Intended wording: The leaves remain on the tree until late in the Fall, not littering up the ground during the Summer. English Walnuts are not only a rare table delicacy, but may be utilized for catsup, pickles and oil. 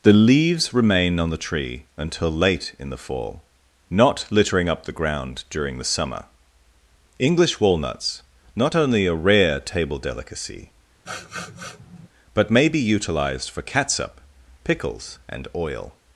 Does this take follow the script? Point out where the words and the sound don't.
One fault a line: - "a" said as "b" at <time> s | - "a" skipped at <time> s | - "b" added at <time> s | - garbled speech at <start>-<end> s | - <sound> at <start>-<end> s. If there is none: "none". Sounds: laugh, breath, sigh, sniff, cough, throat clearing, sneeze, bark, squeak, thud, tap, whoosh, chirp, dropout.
- "are" skipped at 8.2 s
- sniff at 11.1-12.1 s